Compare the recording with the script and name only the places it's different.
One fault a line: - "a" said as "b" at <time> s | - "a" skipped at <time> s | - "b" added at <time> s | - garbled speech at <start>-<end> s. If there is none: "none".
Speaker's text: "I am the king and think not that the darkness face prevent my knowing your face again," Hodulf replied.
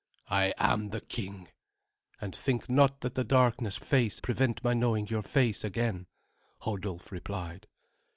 none